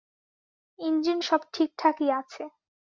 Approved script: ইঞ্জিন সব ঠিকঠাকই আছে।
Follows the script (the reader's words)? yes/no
yes